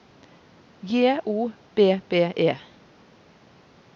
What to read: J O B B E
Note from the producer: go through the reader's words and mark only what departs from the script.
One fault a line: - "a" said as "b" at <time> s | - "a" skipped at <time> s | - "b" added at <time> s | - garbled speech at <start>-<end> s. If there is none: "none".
none